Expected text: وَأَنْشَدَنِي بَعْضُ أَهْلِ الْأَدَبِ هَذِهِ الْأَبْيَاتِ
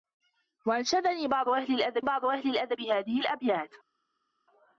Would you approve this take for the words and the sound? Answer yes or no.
no